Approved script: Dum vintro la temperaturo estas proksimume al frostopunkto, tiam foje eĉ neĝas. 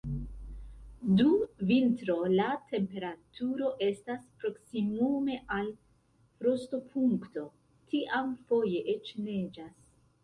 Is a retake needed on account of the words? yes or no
no